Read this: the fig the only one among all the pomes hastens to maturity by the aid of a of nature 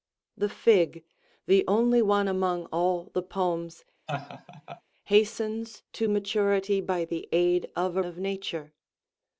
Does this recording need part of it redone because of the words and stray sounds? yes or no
yes